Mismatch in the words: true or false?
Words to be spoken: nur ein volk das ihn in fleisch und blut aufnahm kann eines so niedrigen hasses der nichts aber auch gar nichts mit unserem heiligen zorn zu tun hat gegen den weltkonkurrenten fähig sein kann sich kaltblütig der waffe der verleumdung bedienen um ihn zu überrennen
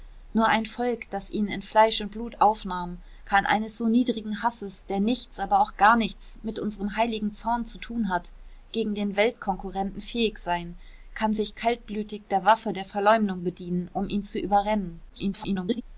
true